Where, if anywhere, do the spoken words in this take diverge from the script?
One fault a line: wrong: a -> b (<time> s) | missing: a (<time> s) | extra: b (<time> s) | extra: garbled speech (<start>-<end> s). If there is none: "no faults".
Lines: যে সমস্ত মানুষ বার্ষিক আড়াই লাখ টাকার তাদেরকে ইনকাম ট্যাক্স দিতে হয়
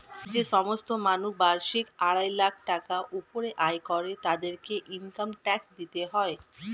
extra: উপরে আয় করে (3.2 s)